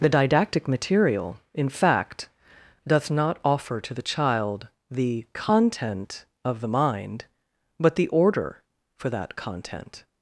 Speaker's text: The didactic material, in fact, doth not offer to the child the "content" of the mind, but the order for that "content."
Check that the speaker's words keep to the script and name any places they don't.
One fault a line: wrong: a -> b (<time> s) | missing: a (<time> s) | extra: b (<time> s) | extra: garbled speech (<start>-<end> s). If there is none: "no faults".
no faults